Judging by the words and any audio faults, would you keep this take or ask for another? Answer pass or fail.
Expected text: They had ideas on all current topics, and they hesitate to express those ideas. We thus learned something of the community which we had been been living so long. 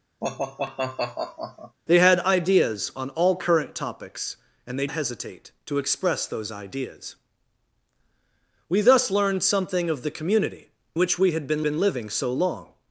fail